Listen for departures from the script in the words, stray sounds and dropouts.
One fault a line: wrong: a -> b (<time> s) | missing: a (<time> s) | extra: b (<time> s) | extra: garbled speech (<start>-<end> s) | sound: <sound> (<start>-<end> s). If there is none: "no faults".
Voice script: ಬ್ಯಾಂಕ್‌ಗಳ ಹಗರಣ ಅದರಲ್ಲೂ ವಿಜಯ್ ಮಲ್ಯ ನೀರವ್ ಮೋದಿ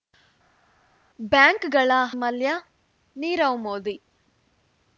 missing: ಹಗರಣ ಅದರಲ್ಲೂ ವಿಜಯ್ (1.9 s)